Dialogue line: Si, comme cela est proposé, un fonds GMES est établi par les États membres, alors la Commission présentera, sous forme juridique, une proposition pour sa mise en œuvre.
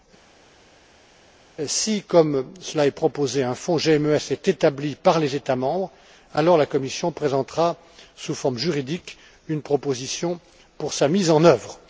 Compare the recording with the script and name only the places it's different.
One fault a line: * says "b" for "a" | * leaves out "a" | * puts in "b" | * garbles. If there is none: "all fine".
all fine